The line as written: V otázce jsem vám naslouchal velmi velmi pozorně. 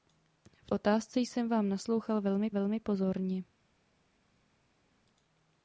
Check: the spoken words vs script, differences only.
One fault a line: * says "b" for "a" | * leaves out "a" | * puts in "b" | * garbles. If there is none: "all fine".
all fine